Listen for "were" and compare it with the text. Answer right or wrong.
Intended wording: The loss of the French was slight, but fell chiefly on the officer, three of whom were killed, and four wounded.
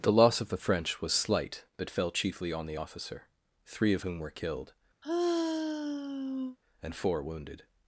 right